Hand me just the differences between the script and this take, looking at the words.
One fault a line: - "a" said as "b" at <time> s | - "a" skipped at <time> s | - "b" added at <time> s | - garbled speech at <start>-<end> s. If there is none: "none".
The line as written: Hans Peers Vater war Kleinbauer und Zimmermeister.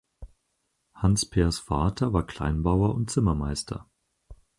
none